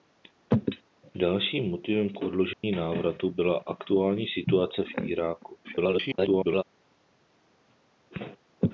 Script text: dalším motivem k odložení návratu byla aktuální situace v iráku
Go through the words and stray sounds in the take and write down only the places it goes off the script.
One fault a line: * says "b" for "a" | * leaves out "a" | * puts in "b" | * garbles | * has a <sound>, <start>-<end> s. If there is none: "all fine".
* has a dropout, 2.5-2.6 s
* garbles